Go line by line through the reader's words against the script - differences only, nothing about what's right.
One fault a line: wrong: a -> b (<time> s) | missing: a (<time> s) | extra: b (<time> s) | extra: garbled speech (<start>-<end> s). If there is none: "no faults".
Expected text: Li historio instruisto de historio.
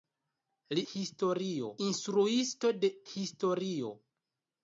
no faults